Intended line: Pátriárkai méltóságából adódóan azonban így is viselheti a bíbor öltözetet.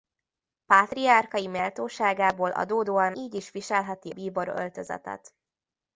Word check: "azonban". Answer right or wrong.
wrong